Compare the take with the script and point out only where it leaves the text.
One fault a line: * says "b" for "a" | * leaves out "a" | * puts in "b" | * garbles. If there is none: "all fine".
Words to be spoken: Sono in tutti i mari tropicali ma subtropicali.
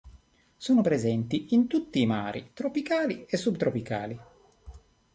* puts in "presenti"
* says "e" for "ma"